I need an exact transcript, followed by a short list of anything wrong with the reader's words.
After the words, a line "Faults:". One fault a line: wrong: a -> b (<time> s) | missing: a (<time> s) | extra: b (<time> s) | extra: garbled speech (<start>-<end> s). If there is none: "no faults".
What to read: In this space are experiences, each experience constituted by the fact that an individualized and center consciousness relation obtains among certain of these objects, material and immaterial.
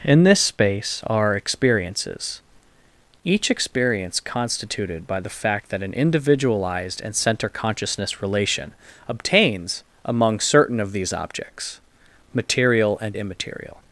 In this space are experiences, each experience constituted by the fact that an individualized and center consciousness relation obtains among certain of these objects, material and immaterial.
Faults:
no faults